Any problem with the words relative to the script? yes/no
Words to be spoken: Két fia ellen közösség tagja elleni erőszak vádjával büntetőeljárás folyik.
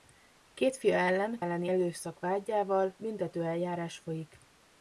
yes